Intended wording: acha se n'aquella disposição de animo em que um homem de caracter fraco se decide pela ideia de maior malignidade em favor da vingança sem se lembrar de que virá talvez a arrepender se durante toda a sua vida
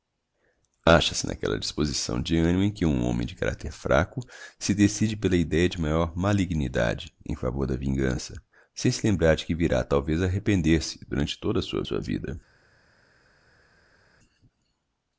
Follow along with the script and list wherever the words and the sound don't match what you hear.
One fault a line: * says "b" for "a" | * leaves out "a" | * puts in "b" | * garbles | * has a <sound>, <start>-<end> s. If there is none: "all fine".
* puts in "sua"